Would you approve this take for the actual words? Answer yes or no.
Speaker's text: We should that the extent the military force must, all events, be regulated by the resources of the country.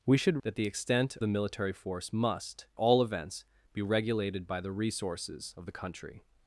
yes